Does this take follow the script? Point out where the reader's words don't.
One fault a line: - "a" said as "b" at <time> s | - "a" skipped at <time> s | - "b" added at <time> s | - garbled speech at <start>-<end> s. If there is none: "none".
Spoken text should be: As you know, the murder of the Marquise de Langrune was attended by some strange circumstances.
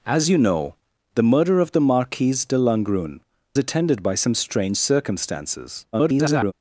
- "was" skipped at 3.2 s
- garbled speech at 5.9-6.5 s